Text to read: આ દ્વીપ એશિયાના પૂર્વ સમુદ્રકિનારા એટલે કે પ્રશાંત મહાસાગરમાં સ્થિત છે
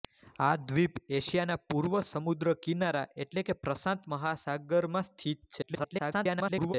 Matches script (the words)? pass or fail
fail